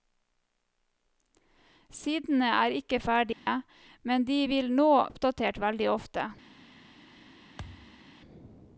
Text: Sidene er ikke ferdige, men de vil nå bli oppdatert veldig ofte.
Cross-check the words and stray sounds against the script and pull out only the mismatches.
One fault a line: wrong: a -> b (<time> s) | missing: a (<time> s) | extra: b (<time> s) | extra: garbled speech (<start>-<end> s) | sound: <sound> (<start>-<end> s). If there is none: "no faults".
sound: dropout (3.3-3.5 s)
missing: bli (4.9 s)
sound: thud (7.6-8.0 s)